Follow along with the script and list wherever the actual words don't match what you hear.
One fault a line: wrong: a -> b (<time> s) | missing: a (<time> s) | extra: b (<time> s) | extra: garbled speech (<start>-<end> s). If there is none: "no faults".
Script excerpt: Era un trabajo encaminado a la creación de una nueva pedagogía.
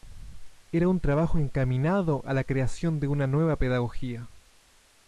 no faults